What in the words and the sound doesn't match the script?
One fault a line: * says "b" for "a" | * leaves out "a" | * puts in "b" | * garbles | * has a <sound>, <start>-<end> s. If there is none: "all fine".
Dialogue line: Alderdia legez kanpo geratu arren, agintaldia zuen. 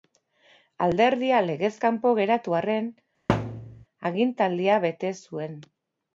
* has a thud, 3.3-3.9 s
* puts in "bete"